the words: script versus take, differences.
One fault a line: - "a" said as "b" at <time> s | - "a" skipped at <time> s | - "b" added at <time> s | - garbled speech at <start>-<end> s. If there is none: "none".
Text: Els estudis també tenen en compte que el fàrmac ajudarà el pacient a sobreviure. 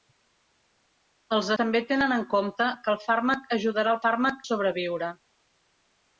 - "estudis" skipped at 1.5 s
- "pacient" said as "fàrmac" at 4.0 s